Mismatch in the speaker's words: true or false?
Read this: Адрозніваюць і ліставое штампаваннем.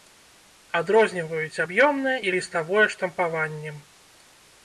true